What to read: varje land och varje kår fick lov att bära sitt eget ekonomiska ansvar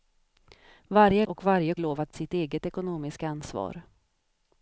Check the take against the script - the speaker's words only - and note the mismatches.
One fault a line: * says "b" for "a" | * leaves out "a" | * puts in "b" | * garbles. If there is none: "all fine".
* leaves out "land"
* leaves out "kår fick"
* leaves out "bära"